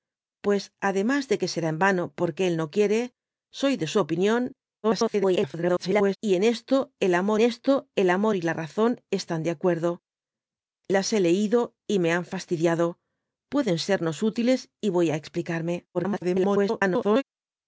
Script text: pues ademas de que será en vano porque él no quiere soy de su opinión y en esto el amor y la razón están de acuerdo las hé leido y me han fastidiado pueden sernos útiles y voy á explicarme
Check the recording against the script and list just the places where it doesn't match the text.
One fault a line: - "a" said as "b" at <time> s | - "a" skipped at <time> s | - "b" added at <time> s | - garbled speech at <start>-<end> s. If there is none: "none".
- garbled speech at 4.8-6.2 s
- "esto el amor" added at 7.4 s
- garbled speech at 15.9-17.2 s